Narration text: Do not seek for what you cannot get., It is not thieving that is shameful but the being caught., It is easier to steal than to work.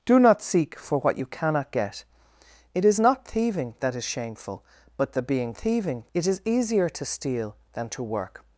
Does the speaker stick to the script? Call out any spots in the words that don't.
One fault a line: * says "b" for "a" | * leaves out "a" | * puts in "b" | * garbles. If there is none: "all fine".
* says "thieving" for "caught"